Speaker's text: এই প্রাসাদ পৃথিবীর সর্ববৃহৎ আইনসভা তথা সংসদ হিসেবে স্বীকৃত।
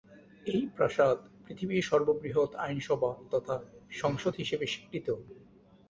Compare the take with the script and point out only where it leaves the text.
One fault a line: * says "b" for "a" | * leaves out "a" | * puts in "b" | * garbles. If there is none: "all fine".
all fine